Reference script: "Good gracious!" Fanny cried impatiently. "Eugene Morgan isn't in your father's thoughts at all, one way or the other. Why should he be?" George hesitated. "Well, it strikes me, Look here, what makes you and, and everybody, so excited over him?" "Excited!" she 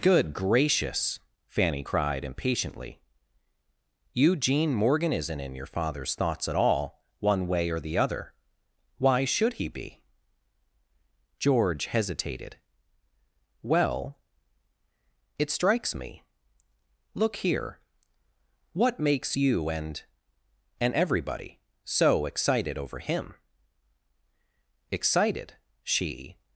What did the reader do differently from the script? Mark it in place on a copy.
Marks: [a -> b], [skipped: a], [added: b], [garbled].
"Good gracious!" Fanny cried impatiently. "Eugene Morgan isn't in your father's thoughts at all, one way or the other. Why should he be?" George hesitated. "Well, it strikes me, Look here, what makes you and, and everybody, so excited over him?" "Excited!" she